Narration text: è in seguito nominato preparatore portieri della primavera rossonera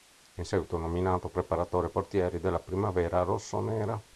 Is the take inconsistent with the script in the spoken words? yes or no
no